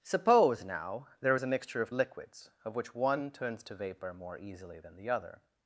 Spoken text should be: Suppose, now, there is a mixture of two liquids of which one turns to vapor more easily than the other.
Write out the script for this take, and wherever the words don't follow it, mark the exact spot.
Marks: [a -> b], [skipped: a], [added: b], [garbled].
Suppose, now, there is a mixture of [skipped: two] liquids of which one turns to vapor more easily than the other.